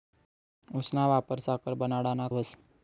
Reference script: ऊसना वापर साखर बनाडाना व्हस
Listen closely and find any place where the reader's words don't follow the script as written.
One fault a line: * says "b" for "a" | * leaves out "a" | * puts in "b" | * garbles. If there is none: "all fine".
all fine